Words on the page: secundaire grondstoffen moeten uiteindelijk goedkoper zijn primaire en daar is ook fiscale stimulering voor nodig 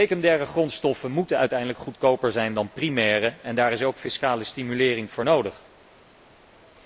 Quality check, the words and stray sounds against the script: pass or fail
fail